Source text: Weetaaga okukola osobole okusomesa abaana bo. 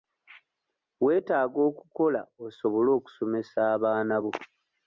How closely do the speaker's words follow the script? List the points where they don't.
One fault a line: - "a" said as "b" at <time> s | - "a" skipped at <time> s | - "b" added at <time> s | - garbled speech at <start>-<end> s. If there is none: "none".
none